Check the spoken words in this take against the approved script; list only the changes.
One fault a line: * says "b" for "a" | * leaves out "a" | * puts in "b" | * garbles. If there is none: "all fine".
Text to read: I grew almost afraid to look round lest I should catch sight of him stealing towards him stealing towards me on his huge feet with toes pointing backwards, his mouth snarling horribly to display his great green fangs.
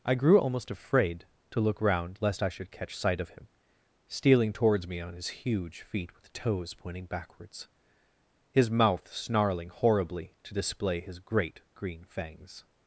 * leaves out "him stealing towards"